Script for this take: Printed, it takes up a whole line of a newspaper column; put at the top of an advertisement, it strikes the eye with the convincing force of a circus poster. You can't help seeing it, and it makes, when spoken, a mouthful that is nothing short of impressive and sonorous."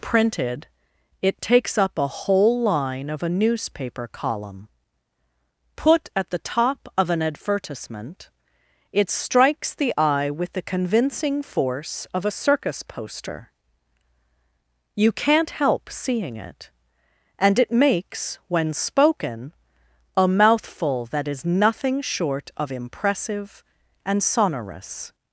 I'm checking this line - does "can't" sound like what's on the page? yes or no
yes